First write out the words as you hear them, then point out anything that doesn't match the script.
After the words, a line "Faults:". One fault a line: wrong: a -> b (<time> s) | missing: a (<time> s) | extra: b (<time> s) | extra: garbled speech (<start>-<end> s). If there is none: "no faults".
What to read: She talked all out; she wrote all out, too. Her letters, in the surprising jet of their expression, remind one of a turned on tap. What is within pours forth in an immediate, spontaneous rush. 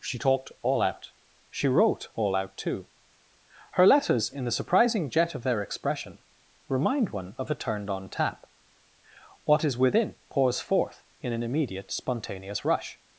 She talked all out; she wrote all out, too. Her letters, in the surprising jet of their expression, remind one of a turned on tap. What is within pours forth in an immediate, spontaneous rush.
Faults:
no faults